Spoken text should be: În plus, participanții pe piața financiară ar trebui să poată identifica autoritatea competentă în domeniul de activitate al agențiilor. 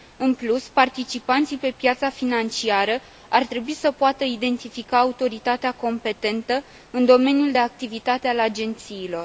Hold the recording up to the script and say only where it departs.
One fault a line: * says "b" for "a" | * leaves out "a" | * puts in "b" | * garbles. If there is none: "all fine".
all fine